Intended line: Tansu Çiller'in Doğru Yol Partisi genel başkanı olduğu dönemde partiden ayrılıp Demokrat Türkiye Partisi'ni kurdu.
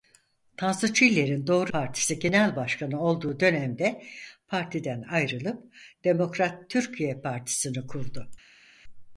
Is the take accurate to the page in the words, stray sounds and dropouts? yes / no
no